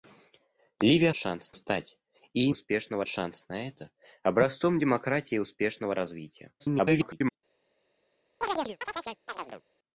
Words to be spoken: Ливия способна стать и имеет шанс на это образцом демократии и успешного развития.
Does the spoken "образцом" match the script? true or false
true